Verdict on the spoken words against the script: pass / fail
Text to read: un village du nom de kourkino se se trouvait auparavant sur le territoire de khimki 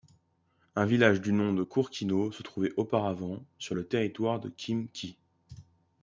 fail